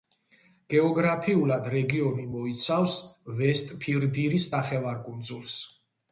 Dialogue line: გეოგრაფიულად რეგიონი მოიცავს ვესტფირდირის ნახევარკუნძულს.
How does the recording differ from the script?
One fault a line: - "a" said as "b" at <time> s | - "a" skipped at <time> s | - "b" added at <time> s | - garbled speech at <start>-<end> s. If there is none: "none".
none